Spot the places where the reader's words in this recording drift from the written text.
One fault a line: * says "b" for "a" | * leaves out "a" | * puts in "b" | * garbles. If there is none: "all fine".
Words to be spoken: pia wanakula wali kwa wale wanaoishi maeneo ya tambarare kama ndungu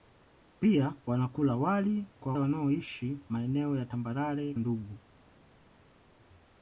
* leaves out "wale"
* leaves out "kama"